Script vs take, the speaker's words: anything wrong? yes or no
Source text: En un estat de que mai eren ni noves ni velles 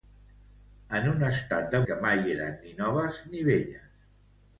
no